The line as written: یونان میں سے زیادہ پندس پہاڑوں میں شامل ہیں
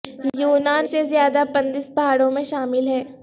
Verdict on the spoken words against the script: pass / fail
fail